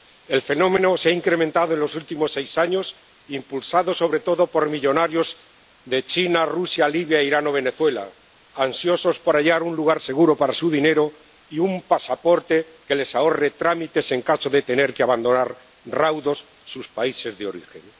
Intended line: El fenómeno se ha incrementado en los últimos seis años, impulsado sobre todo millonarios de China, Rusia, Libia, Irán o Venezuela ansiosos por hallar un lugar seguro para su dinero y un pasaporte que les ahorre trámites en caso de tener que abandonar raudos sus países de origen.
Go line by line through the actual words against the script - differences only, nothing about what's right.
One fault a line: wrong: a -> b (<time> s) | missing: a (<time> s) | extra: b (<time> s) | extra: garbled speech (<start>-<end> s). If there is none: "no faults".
extra: por (4.5 s)